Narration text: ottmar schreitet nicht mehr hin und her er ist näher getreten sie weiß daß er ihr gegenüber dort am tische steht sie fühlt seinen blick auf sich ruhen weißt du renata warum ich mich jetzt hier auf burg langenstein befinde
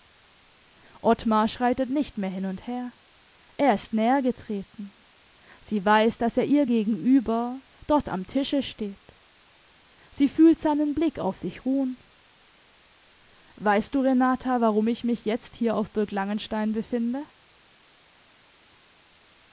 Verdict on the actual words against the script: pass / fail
pass